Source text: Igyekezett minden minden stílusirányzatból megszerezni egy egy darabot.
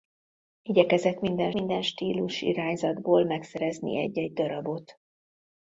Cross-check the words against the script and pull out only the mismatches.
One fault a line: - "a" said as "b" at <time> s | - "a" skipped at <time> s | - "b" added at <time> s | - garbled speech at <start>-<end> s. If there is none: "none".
none